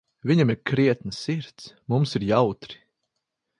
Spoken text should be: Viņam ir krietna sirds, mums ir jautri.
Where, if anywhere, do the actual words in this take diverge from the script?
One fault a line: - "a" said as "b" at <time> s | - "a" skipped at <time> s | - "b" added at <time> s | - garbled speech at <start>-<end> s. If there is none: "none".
none